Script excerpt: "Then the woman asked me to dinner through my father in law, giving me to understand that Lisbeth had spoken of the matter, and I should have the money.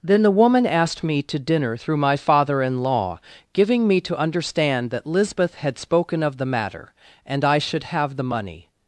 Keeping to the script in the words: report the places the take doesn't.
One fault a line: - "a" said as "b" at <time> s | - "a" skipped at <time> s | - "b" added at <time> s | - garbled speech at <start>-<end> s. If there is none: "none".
none